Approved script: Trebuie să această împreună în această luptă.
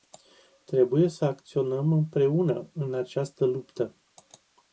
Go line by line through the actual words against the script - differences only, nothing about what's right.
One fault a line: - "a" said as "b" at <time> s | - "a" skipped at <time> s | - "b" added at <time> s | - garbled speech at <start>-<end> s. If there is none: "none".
- "această" said as "acționăm" at 1.2 s